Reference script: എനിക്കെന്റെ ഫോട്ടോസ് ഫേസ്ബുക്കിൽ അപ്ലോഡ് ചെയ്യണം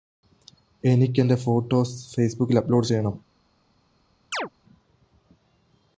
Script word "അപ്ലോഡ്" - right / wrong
right